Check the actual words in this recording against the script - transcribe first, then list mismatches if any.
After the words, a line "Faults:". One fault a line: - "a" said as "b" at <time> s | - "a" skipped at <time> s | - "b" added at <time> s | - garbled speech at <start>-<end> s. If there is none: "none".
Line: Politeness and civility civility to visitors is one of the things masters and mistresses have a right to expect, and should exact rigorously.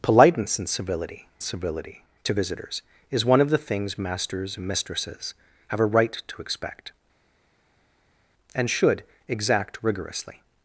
Politeness and civility civility to visitors is one of the things masters and mistresses have a right to expect, and should exact rigorously.
Faults:
none